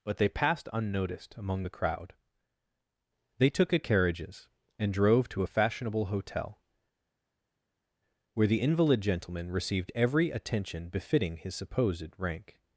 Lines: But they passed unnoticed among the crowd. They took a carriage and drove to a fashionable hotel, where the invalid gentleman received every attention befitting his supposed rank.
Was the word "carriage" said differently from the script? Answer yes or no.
yes